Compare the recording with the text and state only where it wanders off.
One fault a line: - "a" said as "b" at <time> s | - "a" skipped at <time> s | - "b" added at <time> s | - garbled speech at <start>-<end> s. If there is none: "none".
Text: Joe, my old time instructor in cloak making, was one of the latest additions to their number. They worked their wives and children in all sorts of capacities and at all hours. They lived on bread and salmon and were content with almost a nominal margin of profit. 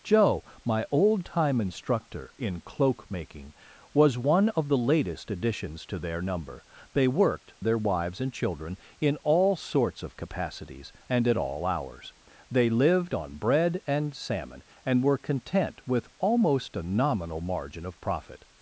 none